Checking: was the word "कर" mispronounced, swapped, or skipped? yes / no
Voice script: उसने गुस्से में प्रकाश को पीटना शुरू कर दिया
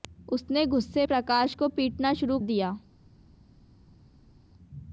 yes